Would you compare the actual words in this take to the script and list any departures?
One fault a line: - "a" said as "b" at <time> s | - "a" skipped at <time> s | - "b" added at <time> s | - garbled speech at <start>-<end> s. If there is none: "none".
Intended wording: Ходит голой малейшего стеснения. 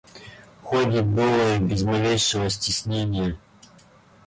- "без" added at 1.6 s